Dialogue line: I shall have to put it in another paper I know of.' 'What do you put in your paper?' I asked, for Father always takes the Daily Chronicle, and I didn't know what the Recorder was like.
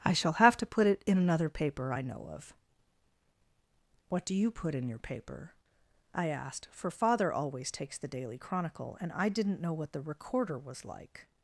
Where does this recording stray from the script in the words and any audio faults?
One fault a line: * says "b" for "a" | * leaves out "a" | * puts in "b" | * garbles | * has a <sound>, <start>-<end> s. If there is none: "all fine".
all fine